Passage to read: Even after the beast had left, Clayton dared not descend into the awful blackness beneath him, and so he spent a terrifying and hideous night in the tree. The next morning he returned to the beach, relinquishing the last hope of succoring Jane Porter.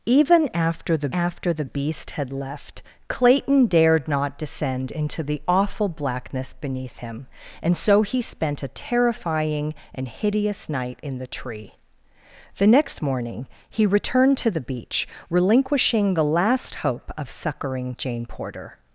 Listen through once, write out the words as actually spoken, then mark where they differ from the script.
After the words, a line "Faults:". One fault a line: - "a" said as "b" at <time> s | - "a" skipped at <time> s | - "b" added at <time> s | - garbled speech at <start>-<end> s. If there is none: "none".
Even after the after the beast had left, Clayton dared not descend into the awful blackness beneath him, and so he spent a terrifying and hideous night in the tree. The next morning he returned to the beach, relinquishing the last hope of succoring Jane Porter.
Faults:
- "after the" added at 1.1 s